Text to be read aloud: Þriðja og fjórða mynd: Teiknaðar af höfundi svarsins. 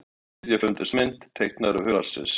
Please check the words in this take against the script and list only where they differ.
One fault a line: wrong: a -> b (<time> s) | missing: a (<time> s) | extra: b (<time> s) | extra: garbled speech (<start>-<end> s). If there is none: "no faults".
wrong: fjórða -> höfundi (0.6 s)
missing: höfundi (1.9 s)